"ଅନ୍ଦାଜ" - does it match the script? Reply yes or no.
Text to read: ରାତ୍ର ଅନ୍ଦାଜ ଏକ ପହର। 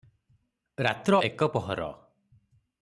no